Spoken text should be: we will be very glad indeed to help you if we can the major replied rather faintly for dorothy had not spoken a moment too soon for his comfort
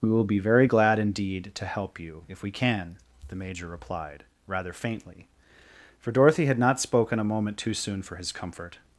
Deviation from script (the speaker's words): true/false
false